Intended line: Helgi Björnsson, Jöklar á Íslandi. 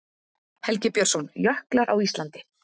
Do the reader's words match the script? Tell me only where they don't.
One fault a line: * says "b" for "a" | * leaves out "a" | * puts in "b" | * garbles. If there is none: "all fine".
all fine